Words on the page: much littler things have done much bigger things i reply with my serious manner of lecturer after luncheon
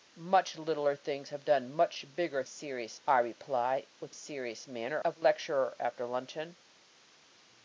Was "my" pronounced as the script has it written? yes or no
no